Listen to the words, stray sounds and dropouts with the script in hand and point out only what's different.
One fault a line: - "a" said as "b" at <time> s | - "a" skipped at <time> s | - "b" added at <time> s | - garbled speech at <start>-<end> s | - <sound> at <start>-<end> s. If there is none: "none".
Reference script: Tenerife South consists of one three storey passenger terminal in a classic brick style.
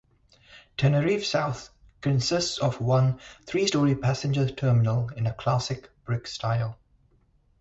none